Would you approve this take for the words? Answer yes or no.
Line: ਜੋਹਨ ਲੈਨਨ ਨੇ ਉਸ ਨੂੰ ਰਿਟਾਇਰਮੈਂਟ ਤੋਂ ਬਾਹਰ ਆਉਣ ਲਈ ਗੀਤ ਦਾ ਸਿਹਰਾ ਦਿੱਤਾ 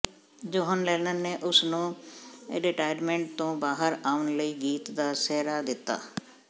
yes